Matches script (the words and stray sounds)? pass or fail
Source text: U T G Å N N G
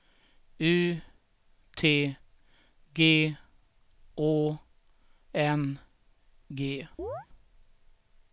fail